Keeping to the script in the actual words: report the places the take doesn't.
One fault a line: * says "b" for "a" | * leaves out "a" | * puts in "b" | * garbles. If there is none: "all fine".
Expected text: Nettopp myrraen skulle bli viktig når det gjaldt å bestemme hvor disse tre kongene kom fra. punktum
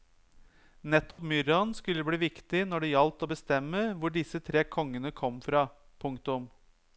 all fine